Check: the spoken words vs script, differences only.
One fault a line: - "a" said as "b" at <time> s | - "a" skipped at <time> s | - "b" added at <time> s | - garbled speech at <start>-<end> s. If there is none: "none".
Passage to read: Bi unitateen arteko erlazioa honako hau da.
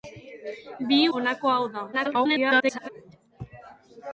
- "unitateen arteko erlazioa" skipped at 1.0 s
- garbled speech at 1.9-2.9 s